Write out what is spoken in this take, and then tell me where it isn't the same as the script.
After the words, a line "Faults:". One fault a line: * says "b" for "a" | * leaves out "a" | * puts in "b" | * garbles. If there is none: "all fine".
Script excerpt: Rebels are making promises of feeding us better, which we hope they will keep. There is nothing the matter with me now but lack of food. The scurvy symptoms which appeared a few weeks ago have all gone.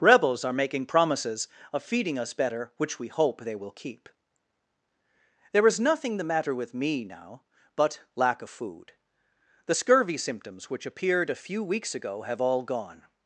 Rebels are making promises of feeding us better, which we hope they will keep. There is nothing the matter with me now but lack of food. The scurvy symptoms which appeared a few weeks ago have all gone.
Faults:
all fine